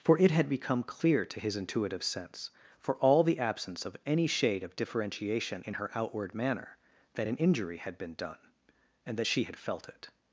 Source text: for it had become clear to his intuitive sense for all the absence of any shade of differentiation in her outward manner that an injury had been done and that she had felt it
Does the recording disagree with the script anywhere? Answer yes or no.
no